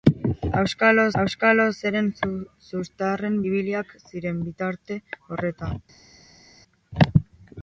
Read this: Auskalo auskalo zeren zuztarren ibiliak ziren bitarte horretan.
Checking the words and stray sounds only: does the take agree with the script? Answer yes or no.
yes